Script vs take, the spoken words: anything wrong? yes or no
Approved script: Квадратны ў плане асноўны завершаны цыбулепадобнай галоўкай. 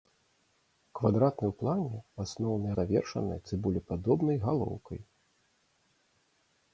no